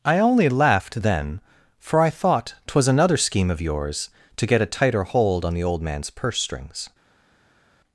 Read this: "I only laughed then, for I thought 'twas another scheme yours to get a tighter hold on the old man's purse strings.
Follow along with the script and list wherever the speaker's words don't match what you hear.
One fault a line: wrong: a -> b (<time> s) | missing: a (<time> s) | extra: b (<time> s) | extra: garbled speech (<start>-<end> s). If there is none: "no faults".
extra: of (3.5 s)